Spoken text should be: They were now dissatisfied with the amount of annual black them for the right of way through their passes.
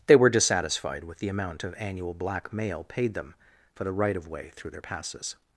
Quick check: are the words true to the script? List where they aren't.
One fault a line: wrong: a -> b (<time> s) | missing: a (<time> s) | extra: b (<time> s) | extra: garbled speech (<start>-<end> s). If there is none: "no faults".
missing: now (0.3 s)
extra: mail paid (2.5 s)